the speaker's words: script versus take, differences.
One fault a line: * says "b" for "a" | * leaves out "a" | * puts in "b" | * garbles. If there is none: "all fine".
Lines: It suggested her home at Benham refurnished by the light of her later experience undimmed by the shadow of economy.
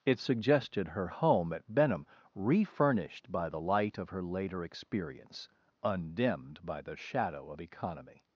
all fine